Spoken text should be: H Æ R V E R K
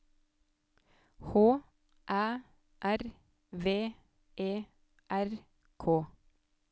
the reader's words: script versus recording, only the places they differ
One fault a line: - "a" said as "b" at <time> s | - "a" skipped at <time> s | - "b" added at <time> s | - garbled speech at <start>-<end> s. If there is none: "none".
none